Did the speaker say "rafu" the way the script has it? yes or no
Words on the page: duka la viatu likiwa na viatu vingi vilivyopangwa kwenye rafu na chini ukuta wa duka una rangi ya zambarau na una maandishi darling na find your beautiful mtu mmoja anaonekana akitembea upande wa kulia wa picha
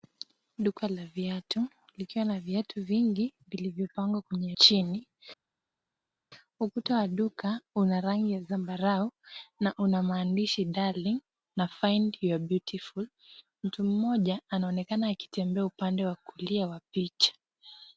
no